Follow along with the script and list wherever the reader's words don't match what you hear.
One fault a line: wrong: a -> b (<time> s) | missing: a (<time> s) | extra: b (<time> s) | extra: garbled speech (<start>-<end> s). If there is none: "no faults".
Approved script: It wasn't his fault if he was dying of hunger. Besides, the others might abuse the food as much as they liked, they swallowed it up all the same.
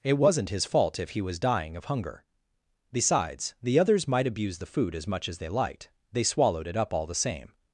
no faults